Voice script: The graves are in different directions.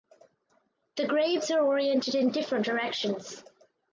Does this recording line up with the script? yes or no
no